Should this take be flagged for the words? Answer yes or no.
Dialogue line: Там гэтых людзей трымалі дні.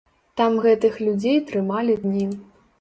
no